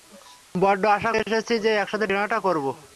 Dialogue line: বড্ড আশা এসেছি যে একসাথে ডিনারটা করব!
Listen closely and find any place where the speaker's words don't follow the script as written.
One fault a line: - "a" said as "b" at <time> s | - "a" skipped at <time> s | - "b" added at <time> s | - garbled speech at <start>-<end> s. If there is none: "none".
none